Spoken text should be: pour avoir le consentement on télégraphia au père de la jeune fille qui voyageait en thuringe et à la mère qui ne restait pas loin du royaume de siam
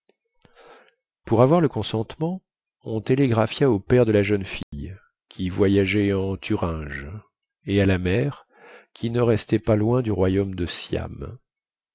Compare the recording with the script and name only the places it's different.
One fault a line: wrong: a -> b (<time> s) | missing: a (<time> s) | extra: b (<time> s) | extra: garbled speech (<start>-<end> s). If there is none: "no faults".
no faults